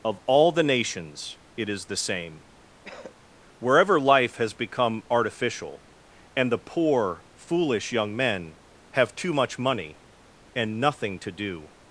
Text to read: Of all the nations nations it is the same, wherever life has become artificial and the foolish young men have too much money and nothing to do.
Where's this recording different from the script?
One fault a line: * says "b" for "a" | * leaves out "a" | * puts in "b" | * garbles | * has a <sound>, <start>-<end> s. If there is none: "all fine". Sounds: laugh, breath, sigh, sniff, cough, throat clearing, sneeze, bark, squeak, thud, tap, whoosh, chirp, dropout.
* leaves out "nations"
* has a cough, 2.8-3.2 s
* puts in "poor"